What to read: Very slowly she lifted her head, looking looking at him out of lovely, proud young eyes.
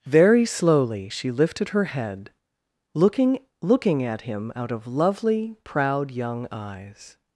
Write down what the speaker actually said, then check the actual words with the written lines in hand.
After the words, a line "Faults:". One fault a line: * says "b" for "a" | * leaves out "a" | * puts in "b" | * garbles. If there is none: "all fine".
Very slowly she lifted her head, looking looking at him out of lovely, proud young eyes.
Faults:
all fine